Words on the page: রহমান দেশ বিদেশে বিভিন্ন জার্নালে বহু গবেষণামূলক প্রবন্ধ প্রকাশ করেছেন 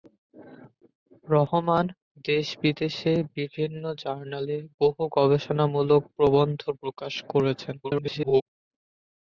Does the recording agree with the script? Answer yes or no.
no